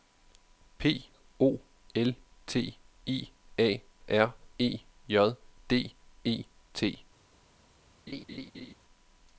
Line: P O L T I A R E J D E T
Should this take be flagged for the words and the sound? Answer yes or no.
yes